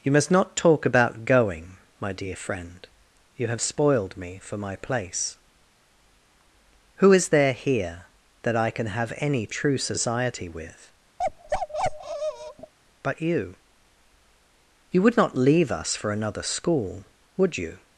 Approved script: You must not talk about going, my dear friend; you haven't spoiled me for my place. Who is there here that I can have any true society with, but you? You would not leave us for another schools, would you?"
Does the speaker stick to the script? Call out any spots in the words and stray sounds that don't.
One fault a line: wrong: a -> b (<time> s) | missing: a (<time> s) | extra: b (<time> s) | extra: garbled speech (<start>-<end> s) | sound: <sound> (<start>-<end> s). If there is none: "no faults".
wrong: haven't -> have (3.5 s)
sound: bark (11.2-12.7 s)
wrong: schools -> school (16.4 s)